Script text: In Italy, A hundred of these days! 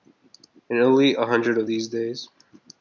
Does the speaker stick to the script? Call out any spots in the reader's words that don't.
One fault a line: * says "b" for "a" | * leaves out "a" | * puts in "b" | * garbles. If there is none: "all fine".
all fine